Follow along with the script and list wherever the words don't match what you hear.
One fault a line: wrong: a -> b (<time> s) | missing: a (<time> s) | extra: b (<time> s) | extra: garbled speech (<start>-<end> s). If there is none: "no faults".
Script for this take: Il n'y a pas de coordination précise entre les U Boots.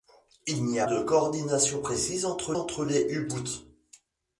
missing: pas (0.9 s)
extra: entre (2.6 s)